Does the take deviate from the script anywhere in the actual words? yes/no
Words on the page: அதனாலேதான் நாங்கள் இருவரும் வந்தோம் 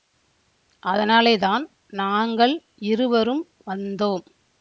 no